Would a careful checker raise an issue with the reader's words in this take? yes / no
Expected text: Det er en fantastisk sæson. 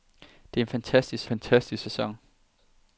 yes